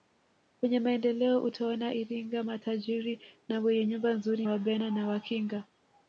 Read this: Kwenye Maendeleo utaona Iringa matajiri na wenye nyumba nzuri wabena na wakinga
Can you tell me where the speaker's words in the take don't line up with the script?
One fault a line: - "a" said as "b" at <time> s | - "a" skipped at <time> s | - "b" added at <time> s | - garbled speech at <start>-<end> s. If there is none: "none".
none